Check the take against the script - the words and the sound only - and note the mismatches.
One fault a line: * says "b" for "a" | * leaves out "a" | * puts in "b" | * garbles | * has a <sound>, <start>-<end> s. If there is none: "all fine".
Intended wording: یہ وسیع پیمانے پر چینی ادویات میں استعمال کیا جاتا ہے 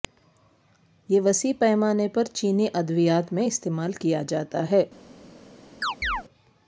* has a chirp, 5.8-6.2 s